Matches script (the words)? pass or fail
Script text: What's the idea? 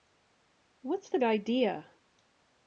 pass